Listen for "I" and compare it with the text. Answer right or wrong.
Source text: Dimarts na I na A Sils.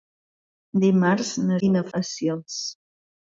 right